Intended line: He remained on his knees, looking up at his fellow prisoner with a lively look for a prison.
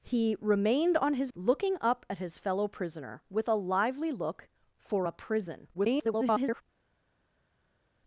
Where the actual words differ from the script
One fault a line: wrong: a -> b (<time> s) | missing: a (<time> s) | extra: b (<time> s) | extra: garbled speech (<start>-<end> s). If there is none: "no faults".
missing: knees (1.3 s)
extra: garbled speech (5.7-6.6 s)